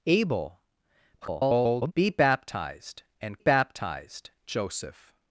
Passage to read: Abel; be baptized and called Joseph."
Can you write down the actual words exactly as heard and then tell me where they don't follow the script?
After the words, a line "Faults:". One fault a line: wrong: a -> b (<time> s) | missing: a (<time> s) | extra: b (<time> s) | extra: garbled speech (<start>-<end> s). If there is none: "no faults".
Abel; [garbled] be baptized and baptized Joseph."
Faults:
extra: garbled speech (1.2-1.9 s)
wrong: called -> baptized (3.4 s)